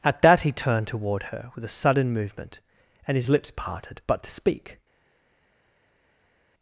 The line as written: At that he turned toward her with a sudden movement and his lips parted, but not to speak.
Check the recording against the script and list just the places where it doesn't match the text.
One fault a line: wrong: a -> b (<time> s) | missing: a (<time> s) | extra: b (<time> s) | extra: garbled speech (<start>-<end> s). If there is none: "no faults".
missing: not (4.2 s)